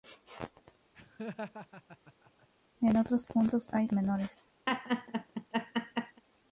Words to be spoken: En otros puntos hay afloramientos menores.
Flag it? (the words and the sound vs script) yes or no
yes